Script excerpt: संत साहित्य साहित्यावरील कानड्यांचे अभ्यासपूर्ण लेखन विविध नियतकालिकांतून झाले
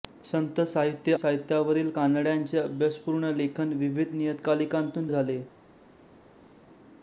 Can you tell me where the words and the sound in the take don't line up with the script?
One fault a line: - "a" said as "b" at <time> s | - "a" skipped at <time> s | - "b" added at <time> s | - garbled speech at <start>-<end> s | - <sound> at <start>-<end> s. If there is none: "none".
none